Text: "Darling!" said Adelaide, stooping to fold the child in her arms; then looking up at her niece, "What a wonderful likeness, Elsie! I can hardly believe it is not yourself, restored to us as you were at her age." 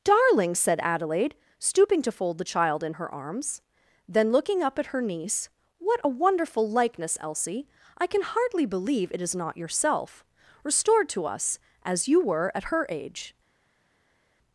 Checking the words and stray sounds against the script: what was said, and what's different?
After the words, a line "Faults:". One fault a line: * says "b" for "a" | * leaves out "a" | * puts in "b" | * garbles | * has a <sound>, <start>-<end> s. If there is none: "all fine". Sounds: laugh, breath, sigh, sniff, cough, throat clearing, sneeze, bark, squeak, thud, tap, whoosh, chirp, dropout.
"Darling!" said Adelaide, stooping to fold the child in her arms; then looking up at her niece, "What a wonderful likeness, Elsie! I can hardly believe it is not yourself, restored to us as you were at her age."
Faults:
all fine